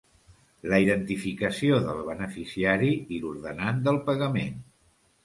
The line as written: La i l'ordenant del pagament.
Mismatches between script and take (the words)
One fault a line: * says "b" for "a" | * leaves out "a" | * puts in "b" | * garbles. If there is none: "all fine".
* puts in "identificació del beneficiari"